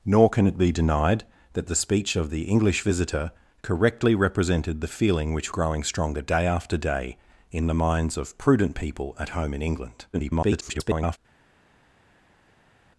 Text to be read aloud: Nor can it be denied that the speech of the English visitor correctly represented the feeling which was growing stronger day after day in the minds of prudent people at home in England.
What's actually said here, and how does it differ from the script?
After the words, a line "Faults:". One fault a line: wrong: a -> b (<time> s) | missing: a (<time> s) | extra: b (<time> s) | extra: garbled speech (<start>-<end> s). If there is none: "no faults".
Nor can it be denied that the speech of the English visitor correctly represented the feeling which growing stronger day after day in the minds of prudent people at home in England. [garbled]
Faults:
missing: was (5.5 s)
extra: garbled speech (10.1-11.2 s)